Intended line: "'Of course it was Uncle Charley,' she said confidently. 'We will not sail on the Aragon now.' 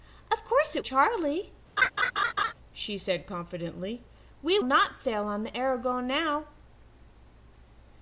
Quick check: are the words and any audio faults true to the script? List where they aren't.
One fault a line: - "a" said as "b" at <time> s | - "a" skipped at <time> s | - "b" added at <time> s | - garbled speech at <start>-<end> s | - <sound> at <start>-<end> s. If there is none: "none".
- "was Uncle" skipped at 0.8 s
- laugh at 1.8-2.5 s
- "will" skipped at 4.6 s